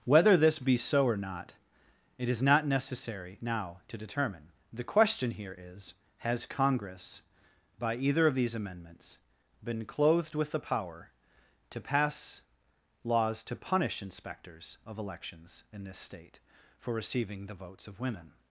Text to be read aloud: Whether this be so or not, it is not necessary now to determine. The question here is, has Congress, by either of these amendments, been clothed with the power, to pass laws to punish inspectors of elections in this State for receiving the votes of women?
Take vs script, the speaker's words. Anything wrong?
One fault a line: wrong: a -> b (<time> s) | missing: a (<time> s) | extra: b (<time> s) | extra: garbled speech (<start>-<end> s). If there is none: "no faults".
no faults